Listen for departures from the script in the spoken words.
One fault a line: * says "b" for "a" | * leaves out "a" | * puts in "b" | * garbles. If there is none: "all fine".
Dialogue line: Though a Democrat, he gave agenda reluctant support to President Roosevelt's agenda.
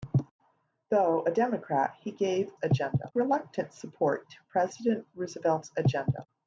all fine